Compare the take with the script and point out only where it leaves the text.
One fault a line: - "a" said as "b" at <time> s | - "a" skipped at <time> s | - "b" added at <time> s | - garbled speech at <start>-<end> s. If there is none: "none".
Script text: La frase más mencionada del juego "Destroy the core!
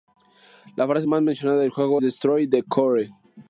none